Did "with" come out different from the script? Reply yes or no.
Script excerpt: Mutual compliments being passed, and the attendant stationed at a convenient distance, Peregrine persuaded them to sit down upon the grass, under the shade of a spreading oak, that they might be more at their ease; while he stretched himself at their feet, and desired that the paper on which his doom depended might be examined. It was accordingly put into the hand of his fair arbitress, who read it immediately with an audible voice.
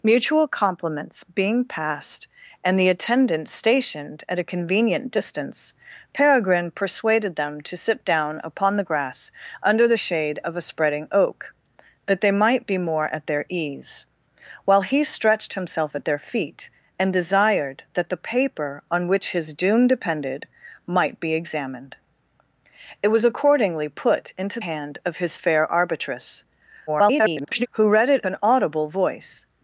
yes